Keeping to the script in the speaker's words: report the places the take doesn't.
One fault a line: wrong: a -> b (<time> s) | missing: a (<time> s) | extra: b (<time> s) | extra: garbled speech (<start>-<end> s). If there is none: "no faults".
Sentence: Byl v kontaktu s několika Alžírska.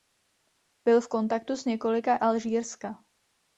no faults